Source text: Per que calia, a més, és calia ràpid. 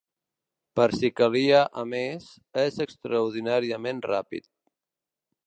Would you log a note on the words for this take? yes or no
yes